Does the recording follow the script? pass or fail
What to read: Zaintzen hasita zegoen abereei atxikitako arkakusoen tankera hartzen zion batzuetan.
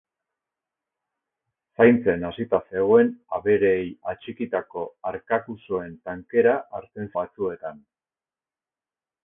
fail